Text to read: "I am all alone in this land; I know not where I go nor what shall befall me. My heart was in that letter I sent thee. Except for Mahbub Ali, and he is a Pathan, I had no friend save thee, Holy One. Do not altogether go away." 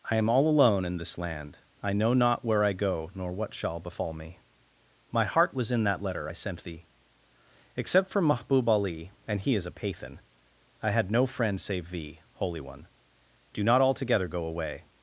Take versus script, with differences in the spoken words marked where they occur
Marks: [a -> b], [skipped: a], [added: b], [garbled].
"I am all alone in this land; I know not where I go nor what shall befall me. My heart was in that letter I sent thee. Except for Mahbub Ali, and he is a Pathan, I had no friend save thee, Holy One. Do not altogether go away."